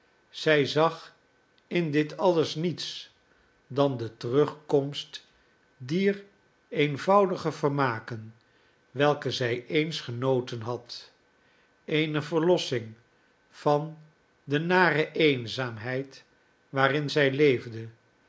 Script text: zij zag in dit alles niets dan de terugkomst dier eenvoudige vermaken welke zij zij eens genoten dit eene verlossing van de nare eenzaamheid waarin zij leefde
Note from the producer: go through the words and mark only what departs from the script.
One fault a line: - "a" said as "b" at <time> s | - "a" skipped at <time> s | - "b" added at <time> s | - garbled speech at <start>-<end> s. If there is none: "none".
- "zij" skipped at 9.7 s
- "dit" said as "had" at 10.6 s